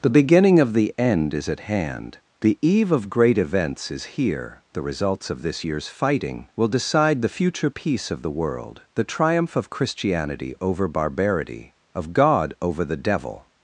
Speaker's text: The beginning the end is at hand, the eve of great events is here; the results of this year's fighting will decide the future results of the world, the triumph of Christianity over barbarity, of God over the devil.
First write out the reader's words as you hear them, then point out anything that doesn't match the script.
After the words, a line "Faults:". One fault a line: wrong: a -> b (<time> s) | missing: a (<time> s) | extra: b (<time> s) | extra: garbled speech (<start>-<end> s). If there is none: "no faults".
The beginning of the end is at hand, the eve of great events is here; the results of this year's fighting will decide the future peace of the world, the triumph of Christianity over barbarity, of God over the devil.
Faults:
extra: of (0.6 s)
wrong: results -> peace (7.7 s)